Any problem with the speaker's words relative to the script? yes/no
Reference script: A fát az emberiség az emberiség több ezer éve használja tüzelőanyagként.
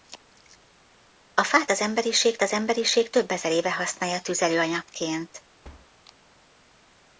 no